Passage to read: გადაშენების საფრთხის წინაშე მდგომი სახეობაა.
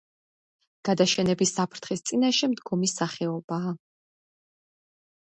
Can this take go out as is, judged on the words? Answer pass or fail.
pass